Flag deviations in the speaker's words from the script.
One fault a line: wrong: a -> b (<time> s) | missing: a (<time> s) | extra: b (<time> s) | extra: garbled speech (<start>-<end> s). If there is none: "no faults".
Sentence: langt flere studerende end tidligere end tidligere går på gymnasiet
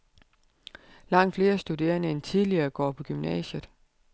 missing: end tidligere (2.7 s)